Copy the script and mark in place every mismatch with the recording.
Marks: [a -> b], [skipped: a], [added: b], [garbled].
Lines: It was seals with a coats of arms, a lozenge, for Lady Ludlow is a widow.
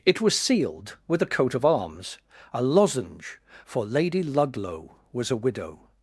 It was [seals -> sealed] with a [coats -> coat] of arms, a lozenge, for Lady Ludlow [is -> was] a widow.